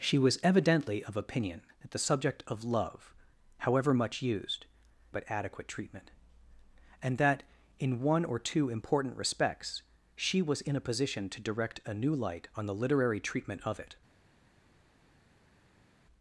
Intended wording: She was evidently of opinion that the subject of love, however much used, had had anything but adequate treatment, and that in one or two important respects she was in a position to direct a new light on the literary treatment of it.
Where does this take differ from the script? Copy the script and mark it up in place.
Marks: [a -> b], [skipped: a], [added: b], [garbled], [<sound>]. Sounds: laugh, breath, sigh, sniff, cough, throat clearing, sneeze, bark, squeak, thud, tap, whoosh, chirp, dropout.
She was evidently of opinion that the subject of love, however much used, [skipped: had had anything] but adequate treatment, and that in one or two important respects she was in a position to direct a new light on the literary treatment of it.